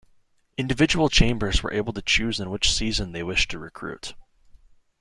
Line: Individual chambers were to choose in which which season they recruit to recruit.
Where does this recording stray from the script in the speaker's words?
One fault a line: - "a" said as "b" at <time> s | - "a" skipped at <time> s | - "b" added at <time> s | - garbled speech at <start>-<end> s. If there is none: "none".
- "able" added at 1.7 s
- "which" skipped at 2.7 s
- "recruit" said as "wished" at 3.2 s